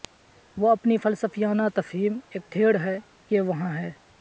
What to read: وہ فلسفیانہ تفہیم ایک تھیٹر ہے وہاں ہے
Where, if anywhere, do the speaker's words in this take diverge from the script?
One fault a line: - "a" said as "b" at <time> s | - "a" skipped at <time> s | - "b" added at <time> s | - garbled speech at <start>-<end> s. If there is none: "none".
- "اپنی" added at 0.7 s
- "کہ" added at 3.3 s